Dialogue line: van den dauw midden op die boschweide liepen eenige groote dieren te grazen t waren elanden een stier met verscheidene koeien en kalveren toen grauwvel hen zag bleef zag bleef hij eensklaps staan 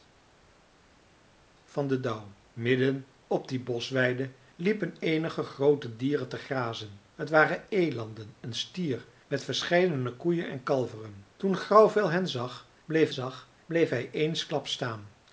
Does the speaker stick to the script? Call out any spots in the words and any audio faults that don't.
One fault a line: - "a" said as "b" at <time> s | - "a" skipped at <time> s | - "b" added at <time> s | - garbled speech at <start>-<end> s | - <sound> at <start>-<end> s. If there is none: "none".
none